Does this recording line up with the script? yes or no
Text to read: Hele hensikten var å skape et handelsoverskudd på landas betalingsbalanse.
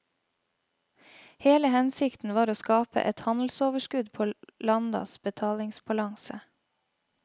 yes